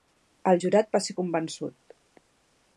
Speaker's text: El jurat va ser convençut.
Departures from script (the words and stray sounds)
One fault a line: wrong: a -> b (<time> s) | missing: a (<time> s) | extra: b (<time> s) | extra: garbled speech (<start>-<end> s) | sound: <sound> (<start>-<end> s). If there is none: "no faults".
no faults